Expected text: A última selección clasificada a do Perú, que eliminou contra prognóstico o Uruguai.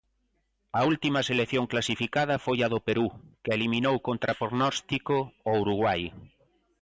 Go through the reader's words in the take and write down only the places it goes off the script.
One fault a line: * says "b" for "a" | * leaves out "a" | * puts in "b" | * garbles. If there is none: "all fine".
* puts in "foi"